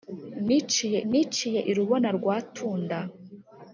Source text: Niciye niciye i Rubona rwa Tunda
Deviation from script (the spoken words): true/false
false